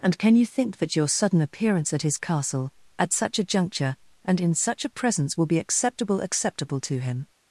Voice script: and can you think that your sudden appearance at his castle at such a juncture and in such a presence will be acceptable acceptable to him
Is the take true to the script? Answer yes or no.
yes